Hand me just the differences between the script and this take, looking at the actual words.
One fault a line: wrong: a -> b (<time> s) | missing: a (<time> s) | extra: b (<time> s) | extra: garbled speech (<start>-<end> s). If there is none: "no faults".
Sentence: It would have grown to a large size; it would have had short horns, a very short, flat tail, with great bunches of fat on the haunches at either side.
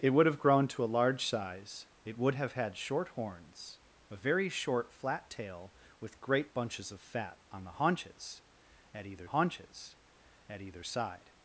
extra: haunches at either (9.3 s)